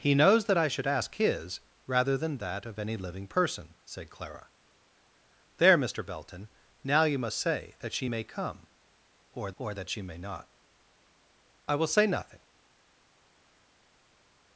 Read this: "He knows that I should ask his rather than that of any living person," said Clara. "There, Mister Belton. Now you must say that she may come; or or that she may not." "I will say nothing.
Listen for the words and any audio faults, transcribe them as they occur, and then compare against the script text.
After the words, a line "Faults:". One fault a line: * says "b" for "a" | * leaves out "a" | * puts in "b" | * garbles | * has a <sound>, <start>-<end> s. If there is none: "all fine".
"He knows that I should ask his rather than that of any living person," said Clara. "There, Mister Belton. Now you must say that she may come; or or that she may not." "I will say nothing.
Faults:
all fine